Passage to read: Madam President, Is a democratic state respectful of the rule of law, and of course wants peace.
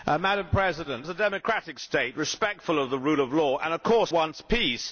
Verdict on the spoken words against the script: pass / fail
pass